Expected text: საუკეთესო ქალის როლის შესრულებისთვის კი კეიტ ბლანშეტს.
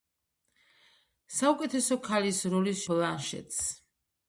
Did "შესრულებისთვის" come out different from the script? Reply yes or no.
yes